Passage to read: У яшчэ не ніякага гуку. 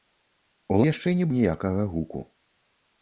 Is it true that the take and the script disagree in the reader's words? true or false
false